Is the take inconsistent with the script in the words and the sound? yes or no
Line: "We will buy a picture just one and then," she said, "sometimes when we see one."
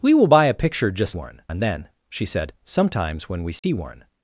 yes